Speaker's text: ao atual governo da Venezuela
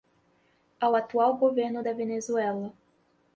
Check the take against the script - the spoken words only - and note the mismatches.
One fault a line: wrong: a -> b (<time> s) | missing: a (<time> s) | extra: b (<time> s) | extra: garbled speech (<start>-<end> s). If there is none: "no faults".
no faults